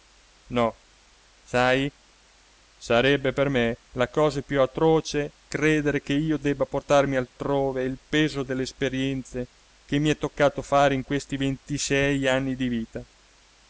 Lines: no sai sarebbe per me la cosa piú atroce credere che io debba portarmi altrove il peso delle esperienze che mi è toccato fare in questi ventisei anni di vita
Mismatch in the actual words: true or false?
false